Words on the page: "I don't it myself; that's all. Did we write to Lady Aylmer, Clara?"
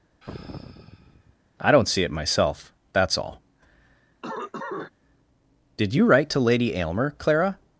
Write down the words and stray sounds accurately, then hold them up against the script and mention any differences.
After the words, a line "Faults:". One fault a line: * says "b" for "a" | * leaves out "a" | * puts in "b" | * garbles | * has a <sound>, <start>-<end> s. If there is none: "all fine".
"I don't see it myself; that's all. Did you write to Lady Aylmer, Clara?"
Faults:
* has a sigh, 0.2-1.4 s
* puts in "see"
* has a cough, 4.2-4.9 s
* says "you" for "we"